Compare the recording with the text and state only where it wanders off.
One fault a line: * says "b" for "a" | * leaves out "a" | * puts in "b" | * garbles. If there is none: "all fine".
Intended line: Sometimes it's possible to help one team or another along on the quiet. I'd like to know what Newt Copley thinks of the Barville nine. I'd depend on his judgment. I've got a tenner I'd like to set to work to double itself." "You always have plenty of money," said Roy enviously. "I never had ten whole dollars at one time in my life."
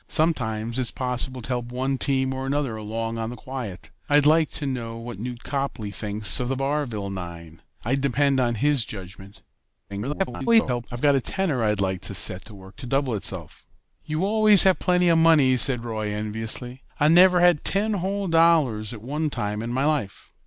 * garbles